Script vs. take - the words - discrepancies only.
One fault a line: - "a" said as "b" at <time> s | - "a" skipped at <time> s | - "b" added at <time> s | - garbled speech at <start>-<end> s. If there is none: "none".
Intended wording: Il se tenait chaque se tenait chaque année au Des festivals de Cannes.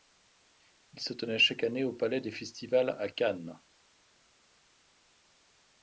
- "se tenait chaque" skipped at 1.6 s
- "Palais" added at 1.9 s
- "de" said as "à" at 3.0 s